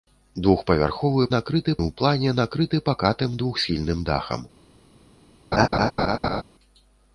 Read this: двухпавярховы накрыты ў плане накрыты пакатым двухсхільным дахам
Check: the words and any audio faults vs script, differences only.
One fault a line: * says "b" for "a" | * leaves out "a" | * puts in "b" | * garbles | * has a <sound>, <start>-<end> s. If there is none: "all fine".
* has a laugh, 5.5-6.4 s